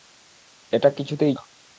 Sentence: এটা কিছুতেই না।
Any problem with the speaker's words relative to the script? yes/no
no